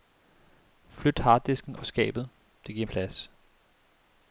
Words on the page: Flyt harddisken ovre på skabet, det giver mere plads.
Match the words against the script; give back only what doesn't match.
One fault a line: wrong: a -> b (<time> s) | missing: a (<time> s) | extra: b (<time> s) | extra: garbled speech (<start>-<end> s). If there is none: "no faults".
missing: ovre (1.8 s)
missing: mere (2.9 s)